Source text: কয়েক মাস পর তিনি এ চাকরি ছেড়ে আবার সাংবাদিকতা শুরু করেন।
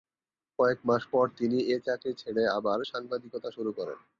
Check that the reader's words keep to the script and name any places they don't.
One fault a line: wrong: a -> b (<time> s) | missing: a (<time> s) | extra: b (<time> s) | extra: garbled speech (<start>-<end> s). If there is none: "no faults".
no faults